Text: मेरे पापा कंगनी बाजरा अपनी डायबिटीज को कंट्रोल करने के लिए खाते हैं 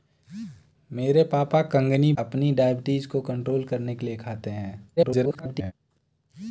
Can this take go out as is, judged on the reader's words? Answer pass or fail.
fail